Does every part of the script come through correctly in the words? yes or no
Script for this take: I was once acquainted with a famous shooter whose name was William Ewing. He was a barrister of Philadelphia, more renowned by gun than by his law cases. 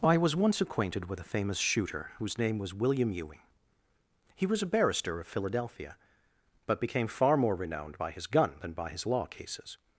no